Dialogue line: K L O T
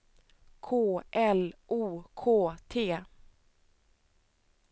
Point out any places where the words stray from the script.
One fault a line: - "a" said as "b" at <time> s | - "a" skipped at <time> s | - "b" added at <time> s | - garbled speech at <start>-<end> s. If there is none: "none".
- "K" added at 2.1 s